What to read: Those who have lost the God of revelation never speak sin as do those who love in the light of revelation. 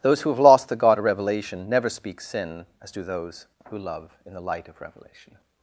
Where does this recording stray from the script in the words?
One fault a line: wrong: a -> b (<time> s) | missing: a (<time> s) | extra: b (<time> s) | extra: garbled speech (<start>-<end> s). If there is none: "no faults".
no faults